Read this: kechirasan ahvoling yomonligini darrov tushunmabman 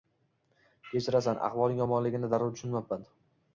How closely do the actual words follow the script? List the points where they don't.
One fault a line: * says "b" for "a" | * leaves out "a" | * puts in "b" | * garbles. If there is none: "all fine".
all fine